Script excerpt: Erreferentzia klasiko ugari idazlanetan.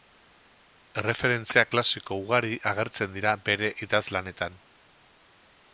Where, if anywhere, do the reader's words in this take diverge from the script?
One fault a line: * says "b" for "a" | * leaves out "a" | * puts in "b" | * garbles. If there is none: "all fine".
* puts in "agertzen dira bere"